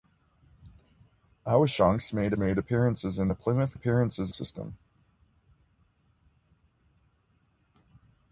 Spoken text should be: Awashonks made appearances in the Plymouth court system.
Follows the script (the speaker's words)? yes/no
no